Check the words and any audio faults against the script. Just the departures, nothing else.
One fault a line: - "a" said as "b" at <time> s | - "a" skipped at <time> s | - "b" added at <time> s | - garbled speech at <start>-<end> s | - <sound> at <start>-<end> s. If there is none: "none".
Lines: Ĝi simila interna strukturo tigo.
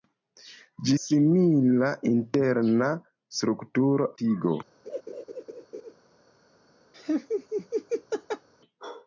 - laugh at 4.9-5.9 s
- laugh at 6.9-8.5 s